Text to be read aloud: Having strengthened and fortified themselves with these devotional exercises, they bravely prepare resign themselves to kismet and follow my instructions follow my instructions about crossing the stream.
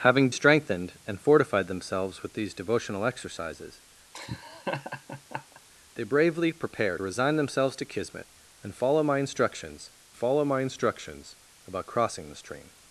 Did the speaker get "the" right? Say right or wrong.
right